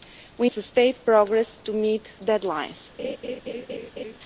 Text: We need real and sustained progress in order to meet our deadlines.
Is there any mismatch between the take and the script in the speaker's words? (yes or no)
yes